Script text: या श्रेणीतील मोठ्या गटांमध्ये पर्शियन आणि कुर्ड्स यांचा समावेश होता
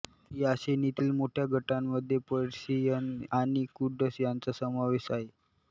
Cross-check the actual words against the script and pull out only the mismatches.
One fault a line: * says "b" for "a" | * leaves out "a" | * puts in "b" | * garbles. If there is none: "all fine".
* says "आहे" for "होता"